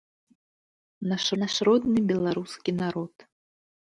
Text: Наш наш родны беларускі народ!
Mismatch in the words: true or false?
false